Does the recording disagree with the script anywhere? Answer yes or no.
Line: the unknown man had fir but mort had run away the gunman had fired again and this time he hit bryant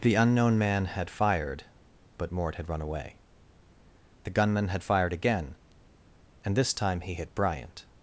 yes